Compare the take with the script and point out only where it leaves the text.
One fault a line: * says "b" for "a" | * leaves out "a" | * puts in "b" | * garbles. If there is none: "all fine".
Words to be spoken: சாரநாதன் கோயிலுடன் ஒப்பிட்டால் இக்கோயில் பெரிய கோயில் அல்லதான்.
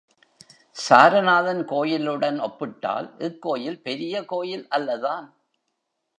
all fine